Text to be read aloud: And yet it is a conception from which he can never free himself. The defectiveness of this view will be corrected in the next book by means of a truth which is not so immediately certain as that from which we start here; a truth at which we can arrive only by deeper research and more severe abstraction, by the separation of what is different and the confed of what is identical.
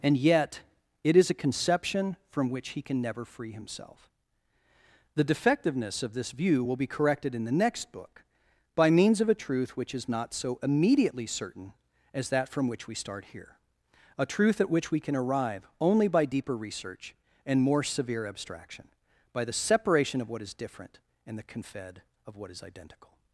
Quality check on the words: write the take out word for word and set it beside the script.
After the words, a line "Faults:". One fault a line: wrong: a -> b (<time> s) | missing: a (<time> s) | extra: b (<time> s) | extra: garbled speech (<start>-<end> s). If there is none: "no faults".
And yet it is a conception from which he can never free himself. The defectiveness of this view will be corrected in the next book by means of a truth which is not so immediately certain as that from which we start here; a truth at which we can arrive only by deeper research and more severe abstraction, by the separation of what is different and the confed of what is identical.
Faults:
no faults